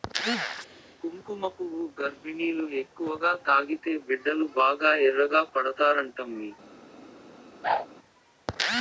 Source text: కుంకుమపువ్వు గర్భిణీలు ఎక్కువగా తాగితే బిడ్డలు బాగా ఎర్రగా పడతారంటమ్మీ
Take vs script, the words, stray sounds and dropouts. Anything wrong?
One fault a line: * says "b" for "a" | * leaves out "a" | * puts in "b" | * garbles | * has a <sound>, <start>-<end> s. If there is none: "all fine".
* has a whoosh, 7.6-7.9 s